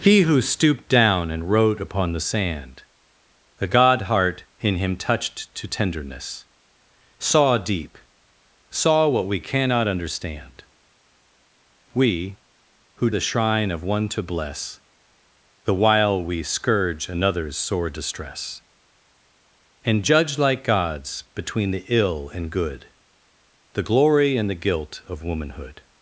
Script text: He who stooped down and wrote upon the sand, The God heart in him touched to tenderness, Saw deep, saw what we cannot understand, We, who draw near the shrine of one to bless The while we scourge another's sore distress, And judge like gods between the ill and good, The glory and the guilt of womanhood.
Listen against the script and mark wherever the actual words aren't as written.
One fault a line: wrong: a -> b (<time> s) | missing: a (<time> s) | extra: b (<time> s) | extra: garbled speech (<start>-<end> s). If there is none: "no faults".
missing: draw near (13.1 s)